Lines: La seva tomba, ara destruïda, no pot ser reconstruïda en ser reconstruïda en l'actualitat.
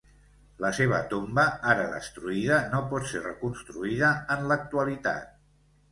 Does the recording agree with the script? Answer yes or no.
no